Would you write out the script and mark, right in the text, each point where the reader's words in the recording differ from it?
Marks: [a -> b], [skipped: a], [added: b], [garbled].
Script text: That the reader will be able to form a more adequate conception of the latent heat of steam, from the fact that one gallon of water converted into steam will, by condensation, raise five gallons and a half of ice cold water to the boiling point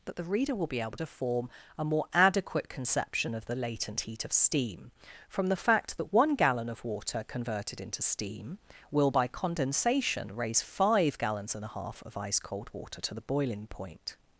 That the reader will be able to form a more adequate conception of the latent heat of steam, from the fact that one gallon of water converted into steam will, by condensation, raise five gallons and a half of ice cold water to the boiling point